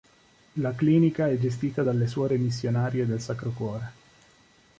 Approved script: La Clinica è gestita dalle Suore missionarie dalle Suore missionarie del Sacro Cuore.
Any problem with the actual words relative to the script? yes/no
yes